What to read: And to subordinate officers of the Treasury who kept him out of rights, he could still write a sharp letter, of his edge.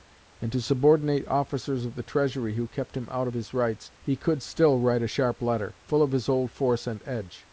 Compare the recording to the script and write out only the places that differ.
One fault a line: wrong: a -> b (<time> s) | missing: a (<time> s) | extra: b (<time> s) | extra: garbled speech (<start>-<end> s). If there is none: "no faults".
extra: his (3.3 s)
extra: full (5.8 s)
extra: old force and (6.3 s)